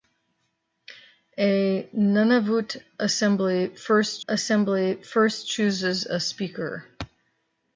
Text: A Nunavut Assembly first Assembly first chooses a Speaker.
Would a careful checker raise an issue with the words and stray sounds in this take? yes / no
no